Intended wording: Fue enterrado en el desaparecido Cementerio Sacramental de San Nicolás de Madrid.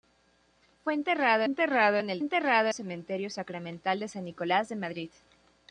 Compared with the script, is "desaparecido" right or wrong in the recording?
wrong